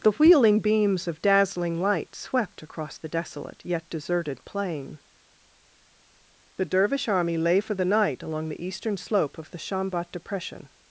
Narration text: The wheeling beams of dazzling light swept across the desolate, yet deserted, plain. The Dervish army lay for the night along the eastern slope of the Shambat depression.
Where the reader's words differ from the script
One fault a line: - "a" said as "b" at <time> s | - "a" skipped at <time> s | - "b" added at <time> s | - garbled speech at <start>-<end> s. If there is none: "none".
none